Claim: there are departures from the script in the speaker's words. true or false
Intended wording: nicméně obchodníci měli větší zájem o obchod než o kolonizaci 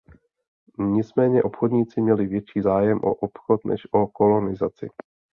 false